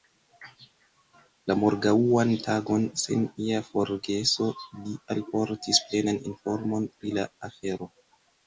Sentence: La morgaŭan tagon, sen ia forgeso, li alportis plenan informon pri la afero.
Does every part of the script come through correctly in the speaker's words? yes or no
yes